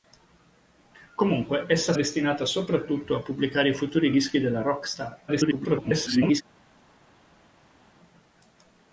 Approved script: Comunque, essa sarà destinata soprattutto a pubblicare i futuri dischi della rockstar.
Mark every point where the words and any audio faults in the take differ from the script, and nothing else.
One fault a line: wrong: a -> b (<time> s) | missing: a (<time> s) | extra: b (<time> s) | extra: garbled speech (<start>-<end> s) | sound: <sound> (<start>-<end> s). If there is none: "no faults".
missing: sarà (1.9 s)
extra: garbled speech (5.3-6.4 s)